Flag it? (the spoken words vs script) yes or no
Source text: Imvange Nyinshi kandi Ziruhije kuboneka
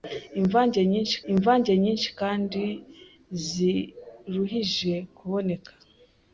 yes